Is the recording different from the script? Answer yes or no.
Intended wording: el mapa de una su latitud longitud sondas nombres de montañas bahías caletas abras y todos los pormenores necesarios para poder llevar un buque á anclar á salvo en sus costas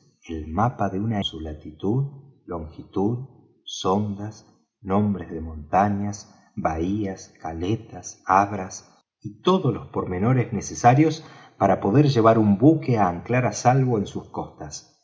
no